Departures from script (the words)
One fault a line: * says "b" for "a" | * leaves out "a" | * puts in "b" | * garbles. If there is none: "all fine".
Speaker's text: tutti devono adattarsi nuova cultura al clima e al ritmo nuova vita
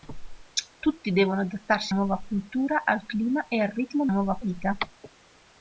all fine